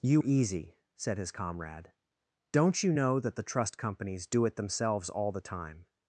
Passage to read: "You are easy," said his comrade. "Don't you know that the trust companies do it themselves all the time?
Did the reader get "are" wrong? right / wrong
wrong